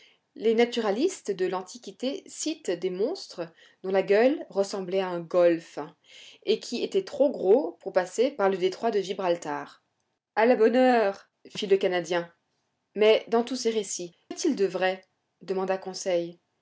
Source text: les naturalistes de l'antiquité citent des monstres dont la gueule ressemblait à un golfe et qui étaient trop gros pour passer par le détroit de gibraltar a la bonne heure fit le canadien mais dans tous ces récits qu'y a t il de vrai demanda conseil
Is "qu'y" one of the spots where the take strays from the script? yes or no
yes